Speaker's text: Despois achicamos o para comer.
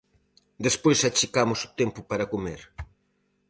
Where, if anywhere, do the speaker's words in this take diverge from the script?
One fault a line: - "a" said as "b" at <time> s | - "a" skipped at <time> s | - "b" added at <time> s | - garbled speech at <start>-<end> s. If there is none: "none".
- "tempo" added at 1.8 s